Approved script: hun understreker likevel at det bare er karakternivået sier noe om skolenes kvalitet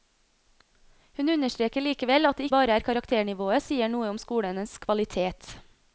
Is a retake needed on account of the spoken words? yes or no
no